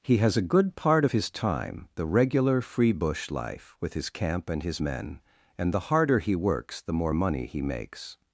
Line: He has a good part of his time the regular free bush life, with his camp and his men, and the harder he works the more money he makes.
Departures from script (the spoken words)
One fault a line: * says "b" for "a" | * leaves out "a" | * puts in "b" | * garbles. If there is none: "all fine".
all fine